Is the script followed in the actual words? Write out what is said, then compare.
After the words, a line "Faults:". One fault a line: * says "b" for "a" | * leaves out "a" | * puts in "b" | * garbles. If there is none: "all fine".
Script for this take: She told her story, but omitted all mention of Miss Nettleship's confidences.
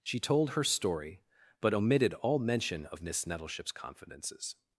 She told her story, but omitted all mention of Miss Nettleship's confidences.
Faults:
all fine